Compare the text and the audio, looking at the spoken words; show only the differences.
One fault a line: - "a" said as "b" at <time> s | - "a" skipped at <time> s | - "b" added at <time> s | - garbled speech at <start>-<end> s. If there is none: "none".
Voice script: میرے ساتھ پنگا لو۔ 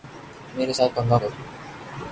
none